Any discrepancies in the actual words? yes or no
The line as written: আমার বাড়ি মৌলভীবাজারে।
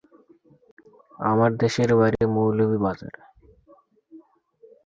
yes